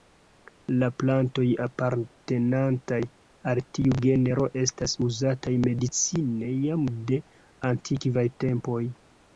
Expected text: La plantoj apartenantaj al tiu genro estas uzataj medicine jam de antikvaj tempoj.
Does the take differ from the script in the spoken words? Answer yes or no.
no